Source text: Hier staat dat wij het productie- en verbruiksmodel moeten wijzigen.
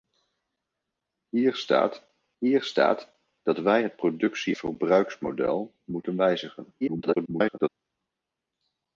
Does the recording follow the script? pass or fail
fail